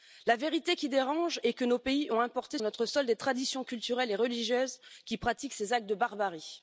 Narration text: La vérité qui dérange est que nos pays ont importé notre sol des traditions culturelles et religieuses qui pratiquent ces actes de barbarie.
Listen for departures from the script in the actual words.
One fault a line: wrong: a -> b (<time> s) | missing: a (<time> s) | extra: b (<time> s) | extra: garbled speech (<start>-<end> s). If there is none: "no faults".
no faults